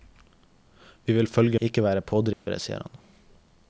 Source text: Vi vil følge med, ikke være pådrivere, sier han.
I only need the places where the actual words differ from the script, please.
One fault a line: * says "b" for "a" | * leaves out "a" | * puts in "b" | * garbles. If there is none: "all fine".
* leaves out "med"